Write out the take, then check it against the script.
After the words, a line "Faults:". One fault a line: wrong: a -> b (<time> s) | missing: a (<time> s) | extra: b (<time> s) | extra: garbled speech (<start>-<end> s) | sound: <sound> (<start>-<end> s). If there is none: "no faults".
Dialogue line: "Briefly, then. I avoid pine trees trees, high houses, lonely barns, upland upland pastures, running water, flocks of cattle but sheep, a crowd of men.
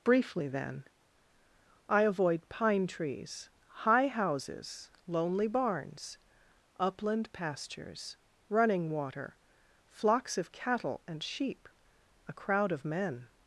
"Briefly, then. I avoid pine trees, high houses, lonely barns, upland pastures, running water, flocks of cattle and sheep, a crowd of men.
Faults:
missing: trees (3.5 s)
missing: upland (7.3 s)
wrong: but -> and (11.1 s)